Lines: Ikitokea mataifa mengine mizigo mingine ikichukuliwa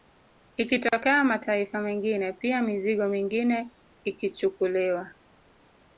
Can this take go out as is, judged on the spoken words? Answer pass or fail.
fail